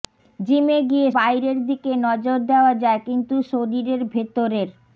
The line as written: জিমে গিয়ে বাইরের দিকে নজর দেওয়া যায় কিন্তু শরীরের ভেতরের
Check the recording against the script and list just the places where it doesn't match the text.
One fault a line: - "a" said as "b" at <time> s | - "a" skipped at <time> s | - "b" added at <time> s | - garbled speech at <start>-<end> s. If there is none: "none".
none